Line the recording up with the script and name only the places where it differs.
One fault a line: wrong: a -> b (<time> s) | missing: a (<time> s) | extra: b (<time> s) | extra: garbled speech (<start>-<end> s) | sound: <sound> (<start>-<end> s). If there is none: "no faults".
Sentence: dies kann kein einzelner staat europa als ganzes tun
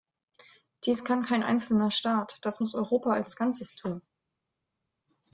extra: das muss (2.4 s)